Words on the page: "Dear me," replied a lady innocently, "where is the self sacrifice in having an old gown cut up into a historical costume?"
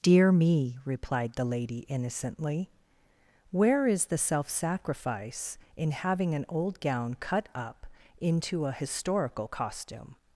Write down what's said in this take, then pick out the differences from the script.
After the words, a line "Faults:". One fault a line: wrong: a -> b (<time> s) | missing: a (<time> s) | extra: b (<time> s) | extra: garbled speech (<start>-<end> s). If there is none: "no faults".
"Dear me," replied the lady innocently, "where is the self sacrifice in having an old gown cut up into a historical costume?"
Faults:
wrong: a -> the (1.3 s)